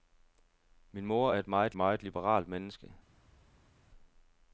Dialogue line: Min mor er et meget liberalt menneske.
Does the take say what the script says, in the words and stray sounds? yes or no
no